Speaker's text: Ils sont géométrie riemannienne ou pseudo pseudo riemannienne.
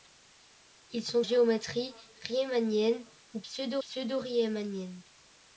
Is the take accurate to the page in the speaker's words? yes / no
yes